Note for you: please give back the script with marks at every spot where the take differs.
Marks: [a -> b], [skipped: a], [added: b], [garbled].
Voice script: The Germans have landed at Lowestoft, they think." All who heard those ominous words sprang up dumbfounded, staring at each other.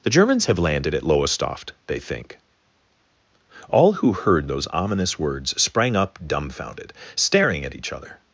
The Germans have landed at Lowestoft, they think." All who heard those ominous words sprang up dumbfounded, staring at each other.